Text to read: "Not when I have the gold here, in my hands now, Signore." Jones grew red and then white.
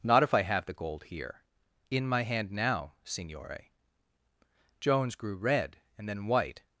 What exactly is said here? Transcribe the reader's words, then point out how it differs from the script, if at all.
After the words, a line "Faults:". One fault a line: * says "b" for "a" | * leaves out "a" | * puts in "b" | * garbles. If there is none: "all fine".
"Not if I have the gold here, in my hand now, Signore." Jones grew red and then white.
Faults:
* says "if" for "when"
* says "hand" for "hands"